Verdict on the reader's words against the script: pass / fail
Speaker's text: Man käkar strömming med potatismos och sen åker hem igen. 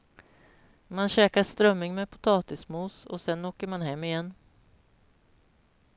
fail